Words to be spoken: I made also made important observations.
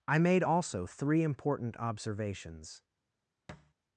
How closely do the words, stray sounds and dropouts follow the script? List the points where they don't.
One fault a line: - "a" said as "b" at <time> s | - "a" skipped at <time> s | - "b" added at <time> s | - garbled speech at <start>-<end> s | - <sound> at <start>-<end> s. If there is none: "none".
- "made" said as "three" at 0.9 s
- thud at 3.5-3.7 s